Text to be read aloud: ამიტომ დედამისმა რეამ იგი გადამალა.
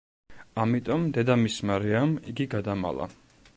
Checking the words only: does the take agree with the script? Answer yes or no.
yes